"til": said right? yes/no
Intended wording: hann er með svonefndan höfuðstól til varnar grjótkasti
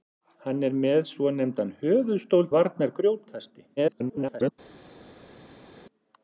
no